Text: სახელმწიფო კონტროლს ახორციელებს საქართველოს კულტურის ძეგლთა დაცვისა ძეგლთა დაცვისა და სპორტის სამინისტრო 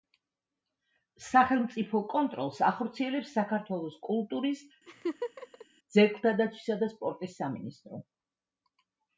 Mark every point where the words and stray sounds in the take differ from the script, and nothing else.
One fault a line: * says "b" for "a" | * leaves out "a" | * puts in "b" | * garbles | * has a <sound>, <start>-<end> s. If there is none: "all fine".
* has a laugh, 4.9-5.7 s
* leaves out "ძეგლთა დაცვისა"